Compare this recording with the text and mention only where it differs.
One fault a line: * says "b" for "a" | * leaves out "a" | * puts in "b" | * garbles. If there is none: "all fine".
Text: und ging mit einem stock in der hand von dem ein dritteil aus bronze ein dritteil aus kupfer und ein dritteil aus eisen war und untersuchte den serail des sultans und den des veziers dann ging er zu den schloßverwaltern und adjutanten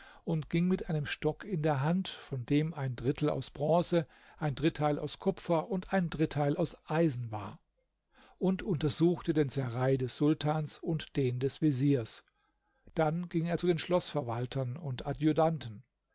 all fine